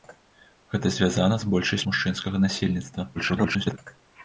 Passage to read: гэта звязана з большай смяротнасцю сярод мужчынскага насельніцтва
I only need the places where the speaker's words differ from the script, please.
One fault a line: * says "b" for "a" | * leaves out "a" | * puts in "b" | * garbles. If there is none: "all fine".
* leaves out "смяротнасцю сярод"
* garbles